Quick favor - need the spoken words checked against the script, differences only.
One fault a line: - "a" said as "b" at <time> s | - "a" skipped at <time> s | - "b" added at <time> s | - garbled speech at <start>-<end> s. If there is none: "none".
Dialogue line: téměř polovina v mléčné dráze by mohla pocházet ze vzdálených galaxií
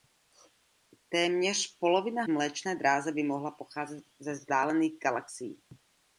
none